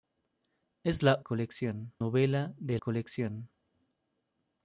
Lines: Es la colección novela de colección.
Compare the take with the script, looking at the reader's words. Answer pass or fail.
pass